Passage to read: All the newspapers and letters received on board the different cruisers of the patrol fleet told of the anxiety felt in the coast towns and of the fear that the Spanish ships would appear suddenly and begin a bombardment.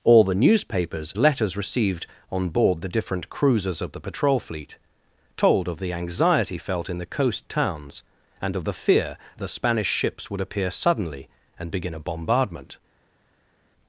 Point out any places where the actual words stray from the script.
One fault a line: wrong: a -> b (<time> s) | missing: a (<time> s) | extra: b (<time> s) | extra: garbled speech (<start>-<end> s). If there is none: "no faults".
missing: and (1.1 s)
missing: that (9.2 s)